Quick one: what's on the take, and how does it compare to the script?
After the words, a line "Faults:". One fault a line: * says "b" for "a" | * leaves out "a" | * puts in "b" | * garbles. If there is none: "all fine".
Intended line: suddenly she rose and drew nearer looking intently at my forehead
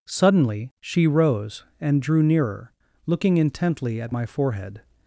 suddenly she rose and drew nearer looking intently at my forehead
Faults:
all fine